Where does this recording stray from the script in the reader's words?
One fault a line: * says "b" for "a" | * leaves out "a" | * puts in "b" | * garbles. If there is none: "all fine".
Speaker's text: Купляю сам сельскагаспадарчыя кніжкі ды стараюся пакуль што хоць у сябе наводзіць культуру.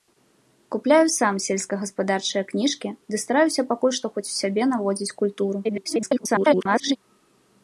* garbles